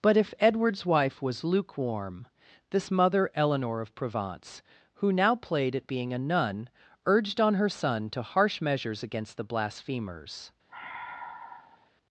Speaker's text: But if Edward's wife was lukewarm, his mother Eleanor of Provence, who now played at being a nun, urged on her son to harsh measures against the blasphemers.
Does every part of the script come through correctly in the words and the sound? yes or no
no